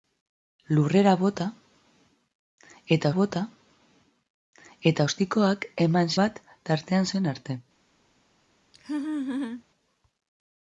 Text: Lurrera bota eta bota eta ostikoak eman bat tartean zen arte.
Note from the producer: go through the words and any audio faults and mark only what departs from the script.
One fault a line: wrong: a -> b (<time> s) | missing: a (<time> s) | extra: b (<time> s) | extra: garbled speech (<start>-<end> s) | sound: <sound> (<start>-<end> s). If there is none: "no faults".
sound: laugh (8.7-9.6 s)